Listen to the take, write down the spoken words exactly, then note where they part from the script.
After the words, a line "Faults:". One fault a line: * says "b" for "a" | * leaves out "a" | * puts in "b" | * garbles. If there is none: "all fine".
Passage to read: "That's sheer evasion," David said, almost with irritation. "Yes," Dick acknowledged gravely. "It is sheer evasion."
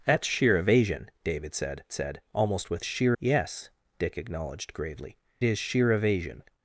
"That's sheer evasion," David said said, almost with sheer. "Yes," Dick acknowledged gravely. "Is sheer evasion."
Faults:
* puts in "said"
* says "sheer" for "irritation"
* leaves out "It"